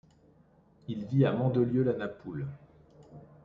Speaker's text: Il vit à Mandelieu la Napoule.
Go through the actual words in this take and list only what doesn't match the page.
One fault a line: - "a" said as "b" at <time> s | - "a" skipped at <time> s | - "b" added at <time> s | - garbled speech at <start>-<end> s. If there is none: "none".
none